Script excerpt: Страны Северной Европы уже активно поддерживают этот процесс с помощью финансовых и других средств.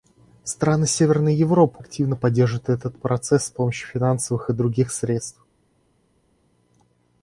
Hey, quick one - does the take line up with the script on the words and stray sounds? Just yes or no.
no